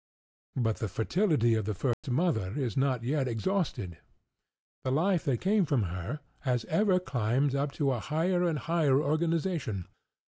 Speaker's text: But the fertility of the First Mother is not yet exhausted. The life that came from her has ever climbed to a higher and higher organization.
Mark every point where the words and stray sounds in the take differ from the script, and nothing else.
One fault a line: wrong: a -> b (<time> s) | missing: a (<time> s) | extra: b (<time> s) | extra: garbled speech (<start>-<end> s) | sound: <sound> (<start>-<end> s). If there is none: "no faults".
sound: dropout (1.9-2.0 s)
extra: up (7.5 s)